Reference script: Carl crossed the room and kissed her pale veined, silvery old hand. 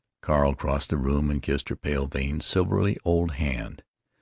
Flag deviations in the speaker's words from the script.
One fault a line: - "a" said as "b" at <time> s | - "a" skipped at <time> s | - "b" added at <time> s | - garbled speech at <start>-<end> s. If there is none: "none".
none